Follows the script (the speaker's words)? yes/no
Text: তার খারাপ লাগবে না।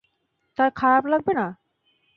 yes